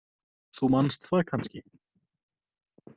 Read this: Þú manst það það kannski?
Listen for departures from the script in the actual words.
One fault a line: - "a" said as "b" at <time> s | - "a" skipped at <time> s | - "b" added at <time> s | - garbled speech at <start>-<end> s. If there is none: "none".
- "það" skipped at 1.2 s